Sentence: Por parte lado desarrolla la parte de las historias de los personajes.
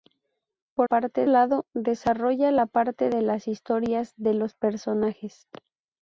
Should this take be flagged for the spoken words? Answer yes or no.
no